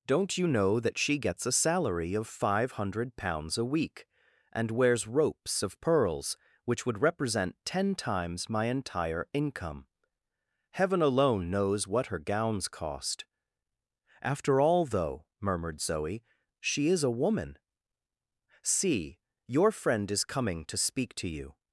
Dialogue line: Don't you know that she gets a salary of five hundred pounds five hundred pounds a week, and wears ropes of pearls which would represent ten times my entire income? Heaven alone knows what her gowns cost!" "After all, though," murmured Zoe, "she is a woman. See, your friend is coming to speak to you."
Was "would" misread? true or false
false